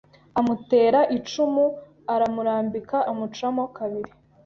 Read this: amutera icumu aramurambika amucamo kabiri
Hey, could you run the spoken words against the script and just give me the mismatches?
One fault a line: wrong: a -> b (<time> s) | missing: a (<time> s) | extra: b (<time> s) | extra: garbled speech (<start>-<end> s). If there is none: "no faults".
no faults